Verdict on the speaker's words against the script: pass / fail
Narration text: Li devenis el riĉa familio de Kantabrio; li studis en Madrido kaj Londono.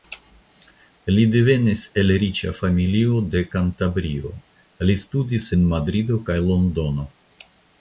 pass